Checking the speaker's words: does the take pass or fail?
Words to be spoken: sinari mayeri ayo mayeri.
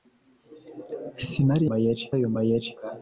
pass